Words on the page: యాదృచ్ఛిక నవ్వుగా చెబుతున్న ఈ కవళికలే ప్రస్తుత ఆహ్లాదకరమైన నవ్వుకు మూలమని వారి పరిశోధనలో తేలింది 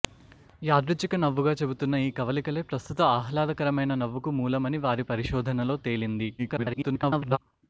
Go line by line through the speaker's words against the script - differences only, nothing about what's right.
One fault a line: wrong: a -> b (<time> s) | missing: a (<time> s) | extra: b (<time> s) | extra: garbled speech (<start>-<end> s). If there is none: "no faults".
extra: garbled speech (6.4-7.4 s)